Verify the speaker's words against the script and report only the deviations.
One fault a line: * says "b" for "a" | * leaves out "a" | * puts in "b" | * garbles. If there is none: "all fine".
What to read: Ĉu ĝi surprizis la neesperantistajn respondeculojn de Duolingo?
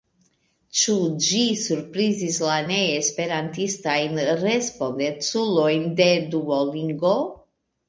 all fine